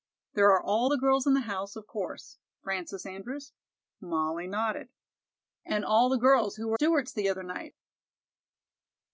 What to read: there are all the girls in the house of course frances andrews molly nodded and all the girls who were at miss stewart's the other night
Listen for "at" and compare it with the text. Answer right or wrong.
wrong